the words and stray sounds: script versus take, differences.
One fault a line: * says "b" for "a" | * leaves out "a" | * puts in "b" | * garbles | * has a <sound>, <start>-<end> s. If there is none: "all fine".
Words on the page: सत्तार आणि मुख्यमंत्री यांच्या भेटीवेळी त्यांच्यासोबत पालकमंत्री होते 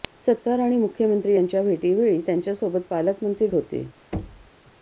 * has a thud, 4.1-4.5 s